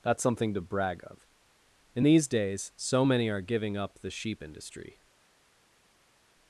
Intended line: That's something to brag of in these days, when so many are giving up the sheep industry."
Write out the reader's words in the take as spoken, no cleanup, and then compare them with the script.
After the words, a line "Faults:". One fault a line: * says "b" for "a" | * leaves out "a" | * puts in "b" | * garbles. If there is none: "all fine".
That's something to brag of in these days, so many are giving up the sheep industry."
Faults:
* leaves out "when"